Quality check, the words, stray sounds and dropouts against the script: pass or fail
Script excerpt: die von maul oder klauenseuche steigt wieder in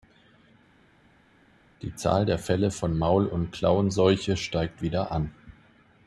fail